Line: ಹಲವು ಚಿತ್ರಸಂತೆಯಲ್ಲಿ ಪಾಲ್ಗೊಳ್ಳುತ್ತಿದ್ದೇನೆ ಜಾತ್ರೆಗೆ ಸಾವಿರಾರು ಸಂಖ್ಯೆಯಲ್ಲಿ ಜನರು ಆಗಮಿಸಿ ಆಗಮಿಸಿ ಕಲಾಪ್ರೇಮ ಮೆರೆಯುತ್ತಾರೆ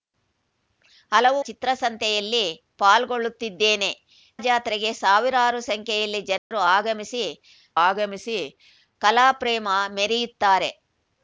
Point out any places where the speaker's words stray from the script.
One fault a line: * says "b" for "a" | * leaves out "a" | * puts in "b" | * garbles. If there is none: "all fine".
all fine